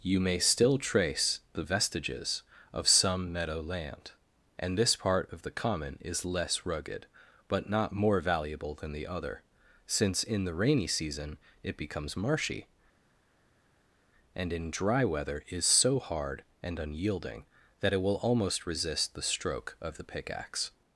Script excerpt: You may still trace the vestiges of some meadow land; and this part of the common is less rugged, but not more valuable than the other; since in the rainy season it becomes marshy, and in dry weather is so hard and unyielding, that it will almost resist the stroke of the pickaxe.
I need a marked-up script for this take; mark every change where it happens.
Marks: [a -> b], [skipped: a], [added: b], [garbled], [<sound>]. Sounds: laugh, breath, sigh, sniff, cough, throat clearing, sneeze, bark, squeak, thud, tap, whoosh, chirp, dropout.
You may still trace the vestiges of some meadow land; and this part of the common is less rugged, but not more valuable than the other; since in the rainy season it becomes marshy, and in dry weather is so hard and unyielding, that it will almost resist the stroke of the pickaxe.